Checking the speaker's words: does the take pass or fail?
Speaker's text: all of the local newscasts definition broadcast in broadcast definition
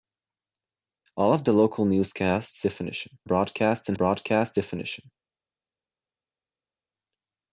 pass